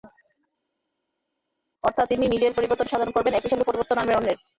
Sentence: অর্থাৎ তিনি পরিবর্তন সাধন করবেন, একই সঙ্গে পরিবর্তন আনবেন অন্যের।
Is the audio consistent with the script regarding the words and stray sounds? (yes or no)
no